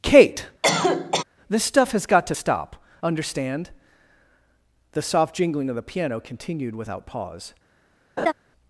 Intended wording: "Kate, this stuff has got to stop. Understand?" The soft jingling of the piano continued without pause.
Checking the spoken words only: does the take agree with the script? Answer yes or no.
yes